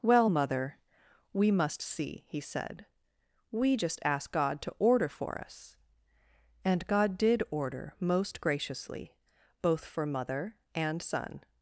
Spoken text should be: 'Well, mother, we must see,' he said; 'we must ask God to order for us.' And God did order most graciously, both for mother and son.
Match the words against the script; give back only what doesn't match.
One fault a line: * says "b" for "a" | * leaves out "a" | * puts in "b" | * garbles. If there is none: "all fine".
* says "just" for "must"